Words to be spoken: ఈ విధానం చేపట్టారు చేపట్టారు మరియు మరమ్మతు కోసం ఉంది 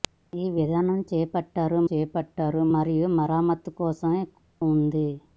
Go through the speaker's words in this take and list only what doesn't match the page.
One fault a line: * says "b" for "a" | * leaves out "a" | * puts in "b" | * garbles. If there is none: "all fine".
all fine